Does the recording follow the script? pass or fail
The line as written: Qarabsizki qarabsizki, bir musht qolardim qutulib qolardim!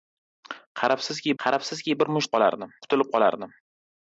pass